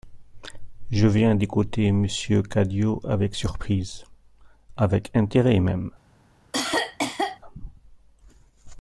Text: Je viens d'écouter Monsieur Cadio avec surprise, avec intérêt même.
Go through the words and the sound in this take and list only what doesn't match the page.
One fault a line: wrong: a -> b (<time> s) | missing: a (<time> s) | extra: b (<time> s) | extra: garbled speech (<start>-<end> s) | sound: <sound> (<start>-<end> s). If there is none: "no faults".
sound: cough (6.5-7.4 s)